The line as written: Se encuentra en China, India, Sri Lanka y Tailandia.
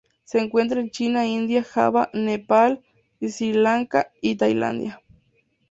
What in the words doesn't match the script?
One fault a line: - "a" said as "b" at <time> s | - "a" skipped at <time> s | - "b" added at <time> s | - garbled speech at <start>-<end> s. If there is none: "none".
- "Java Nepal" added at 1.6 s